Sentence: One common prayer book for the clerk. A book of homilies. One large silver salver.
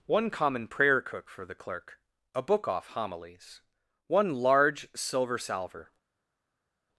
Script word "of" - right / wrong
wrong